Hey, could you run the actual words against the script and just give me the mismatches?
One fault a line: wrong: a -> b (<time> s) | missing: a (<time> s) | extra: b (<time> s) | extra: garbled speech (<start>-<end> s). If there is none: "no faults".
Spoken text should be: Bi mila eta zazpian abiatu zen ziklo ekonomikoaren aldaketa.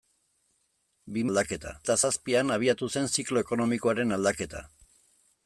wrong: mila -> aldaketa (1.3 s)